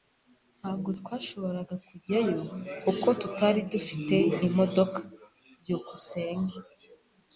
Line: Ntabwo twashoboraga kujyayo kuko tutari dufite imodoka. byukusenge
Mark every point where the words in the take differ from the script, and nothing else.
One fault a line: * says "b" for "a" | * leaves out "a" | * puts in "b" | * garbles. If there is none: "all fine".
all fine